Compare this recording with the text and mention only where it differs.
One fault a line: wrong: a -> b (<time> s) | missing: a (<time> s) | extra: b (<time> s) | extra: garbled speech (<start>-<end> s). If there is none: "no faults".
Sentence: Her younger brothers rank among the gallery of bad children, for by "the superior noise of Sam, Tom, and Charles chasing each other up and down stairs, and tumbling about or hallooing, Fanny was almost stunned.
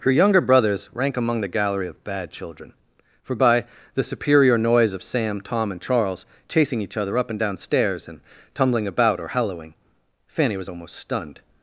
no faults